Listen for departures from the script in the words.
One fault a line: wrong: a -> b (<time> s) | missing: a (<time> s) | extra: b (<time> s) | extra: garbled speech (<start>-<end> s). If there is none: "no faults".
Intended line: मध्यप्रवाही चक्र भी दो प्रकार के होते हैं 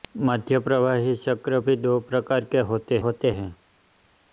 extra: होते (3.1 s)